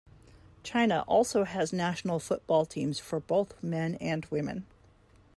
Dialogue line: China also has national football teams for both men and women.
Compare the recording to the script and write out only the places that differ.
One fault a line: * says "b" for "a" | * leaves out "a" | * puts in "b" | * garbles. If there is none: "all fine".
all fine